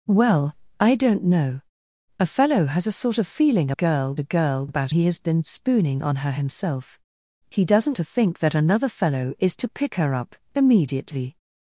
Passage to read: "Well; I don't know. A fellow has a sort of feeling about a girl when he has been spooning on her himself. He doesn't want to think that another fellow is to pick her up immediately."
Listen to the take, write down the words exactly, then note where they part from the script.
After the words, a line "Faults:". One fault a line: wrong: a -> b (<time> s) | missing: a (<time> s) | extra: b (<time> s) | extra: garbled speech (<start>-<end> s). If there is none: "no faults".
"Well; I don't know. A fellow has a sort of feeling girl a girl about he has been spooning on her himself. He doesn't to think that another fellow is to pick her up immediately."
Faults:
wrong: about -> girl (3.7 s)
wrong: when -> about (4.7 s)
missing: want (8.0 s)